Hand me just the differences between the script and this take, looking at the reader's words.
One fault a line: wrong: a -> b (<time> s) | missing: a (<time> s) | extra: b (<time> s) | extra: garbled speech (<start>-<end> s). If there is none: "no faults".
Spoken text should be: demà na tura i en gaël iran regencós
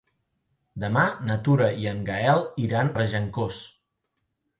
no faults